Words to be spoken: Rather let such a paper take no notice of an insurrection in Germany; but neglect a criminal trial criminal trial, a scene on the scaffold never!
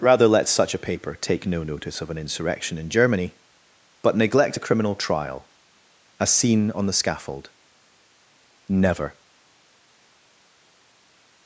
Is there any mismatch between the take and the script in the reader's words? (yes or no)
yes